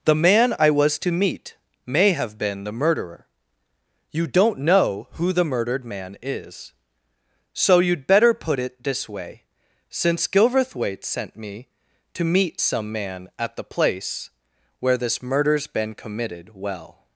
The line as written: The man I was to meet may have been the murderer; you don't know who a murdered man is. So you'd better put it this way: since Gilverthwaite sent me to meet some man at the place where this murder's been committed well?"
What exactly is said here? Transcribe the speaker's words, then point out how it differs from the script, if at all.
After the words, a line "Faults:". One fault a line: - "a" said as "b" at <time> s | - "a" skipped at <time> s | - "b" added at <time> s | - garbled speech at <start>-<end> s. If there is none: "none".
The man I was to meet may have been the murderer; you don't know who the murdered man is. So you'd better put it this way: since Gilverthwaite sent me to meet some man at the place where this murder's been committed well?"
Faults:
- "a" said as "the" at 5.3 s